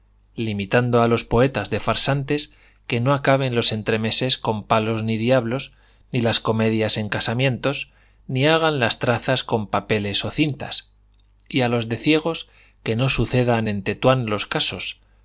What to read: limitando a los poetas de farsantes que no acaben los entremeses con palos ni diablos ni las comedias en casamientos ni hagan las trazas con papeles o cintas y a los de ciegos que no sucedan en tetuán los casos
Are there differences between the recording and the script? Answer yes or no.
no